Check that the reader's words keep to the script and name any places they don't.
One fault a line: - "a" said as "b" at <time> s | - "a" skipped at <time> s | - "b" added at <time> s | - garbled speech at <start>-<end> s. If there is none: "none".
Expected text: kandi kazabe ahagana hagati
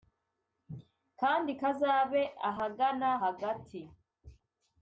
none